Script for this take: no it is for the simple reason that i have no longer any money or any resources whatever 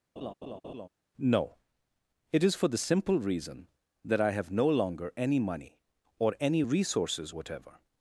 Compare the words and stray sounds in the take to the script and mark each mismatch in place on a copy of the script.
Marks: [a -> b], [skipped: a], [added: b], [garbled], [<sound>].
[laugh] no it is for the simple reason that i have no longer any money or any resources whatever